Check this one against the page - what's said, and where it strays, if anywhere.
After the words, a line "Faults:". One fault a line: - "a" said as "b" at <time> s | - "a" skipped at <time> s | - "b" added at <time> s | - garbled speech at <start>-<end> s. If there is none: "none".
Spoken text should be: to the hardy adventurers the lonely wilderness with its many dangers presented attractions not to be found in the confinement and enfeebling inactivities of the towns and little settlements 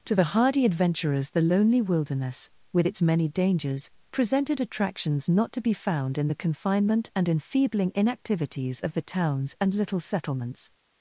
to the hardy adventurers the lonely wilderness with its many dangers presented attractions not to be found in the confinement and enfeebling inactivities of the towns and little settlements
Faults:
none